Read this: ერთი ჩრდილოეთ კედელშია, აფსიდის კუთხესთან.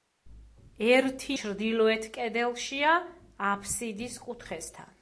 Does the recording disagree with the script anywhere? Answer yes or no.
no